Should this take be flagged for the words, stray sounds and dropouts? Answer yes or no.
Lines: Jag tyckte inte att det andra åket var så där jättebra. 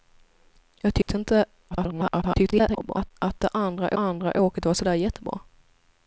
yes